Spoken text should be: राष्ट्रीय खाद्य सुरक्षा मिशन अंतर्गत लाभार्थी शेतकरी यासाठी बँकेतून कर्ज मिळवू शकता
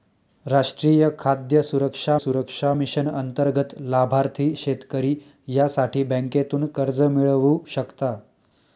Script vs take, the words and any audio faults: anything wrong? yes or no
yes